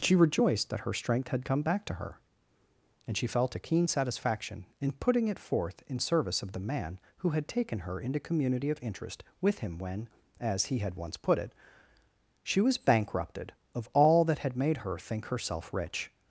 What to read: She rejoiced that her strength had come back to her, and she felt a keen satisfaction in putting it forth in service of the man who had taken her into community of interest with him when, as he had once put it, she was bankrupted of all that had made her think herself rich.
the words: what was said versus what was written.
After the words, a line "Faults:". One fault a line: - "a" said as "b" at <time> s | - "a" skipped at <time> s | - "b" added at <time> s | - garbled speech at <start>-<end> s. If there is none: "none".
She rejoiced that her strength had come back to her, and she felt a keen satisfaction in putting it forth in service of the man who had taken her into community of interest with him when, as he had once put it, she was bankrupted of all that had made her think herself rich.
Faults:
none